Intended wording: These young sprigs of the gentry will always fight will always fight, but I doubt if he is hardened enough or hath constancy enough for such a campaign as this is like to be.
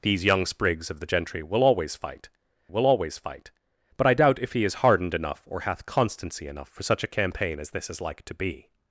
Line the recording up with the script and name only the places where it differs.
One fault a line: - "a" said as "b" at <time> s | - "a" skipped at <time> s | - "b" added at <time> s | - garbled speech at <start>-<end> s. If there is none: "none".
none